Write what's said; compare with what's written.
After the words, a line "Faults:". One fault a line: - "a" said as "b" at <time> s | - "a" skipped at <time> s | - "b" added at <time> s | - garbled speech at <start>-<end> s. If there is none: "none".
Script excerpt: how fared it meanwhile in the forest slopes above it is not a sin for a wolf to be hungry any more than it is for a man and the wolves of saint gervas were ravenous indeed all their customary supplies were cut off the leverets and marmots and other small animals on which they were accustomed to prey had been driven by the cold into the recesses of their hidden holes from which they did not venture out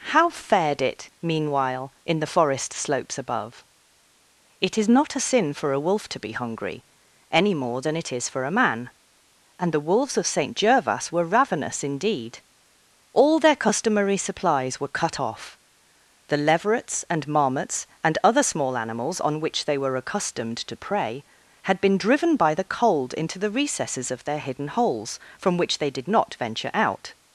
how fared it meanwhile in the forest slopes above it is not a sin for a wolf to be hungry any more than it is for a man and the wolves of saint gervas were ravenous indeed all their customary supplies were cut off the leverets and marmots and other small animals on which they were accustomed to prey had been driven by the cold into the recesses of their hidden holes from which they did not venture out
Faults:
none